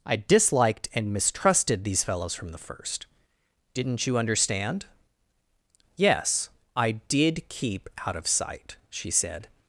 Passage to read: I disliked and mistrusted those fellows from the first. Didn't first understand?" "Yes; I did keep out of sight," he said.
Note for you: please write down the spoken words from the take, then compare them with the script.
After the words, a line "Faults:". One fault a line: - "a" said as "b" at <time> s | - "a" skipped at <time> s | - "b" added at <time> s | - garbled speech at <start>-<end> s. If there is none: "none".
I disliked and mistrusted these fellows from the first. Didn't you understand?" "Yes; I did keep out of sight," she said.
Faults:
- "those" said as "these" at 1.8 s
- "first" said as "you" at 4.1 s
- "he" said as "she" at 8.9 s